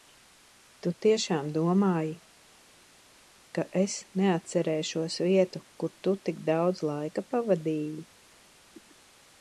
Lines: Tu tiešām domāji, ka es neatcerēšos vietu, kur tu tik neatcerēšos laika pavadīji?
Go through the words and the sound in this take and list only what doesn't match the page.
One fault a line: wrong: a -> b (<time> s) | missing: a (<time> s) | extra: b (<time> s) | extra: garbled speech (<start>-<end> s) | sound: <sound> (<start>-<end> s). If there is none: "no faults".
wrong: neatcerēšos -> daudz (6.5 s)